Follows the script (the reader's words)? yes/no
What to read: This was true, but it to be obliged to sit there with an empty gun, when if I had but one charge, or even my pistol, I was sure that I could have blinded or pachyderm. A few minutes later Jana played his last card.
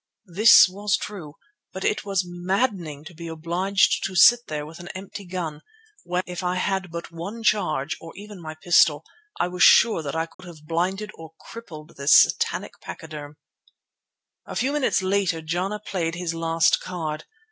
no